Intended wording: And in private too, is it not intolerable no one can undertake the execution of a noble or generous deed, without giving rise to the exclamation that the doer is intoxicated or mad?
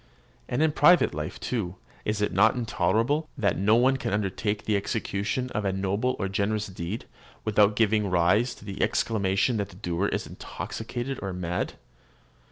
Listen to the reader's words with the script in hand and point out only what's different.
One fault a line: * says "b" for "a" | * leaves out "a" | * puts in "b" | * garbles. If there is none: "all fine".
* puts in "life"
* puts in "that"